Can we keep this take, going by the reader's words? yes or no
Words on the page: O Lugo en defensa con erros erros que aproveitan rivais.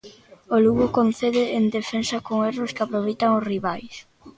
no